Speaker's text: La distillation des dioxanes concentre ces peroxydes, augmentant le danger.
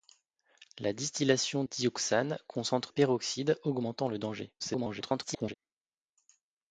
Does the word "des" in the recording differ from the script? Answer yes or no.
yes